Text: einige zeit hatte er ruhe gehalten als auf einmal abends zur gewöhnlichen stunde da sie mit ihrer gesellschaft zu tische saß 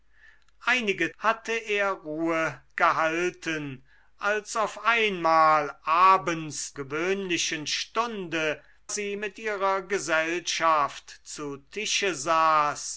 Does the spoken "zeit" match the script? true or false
false